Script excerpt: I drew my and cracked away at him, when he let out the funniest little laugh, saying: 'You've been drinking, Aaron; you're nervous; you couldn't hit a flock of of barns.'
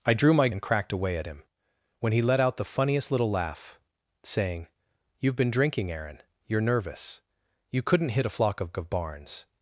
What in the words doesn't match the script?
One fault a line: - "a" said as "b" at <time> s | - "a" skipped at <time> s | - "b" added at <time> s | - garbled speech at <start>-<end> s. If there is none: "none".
none